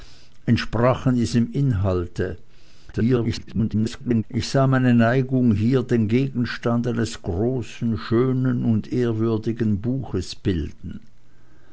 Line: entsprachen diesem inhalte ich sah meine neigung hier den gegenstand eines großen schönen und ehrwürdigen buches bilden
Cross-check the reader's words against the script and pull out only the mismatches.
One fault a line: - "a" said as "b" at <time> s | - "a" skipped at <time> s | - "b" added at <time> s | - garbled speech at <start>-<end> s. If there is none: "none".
- garbled speech at 2.9-4.2 s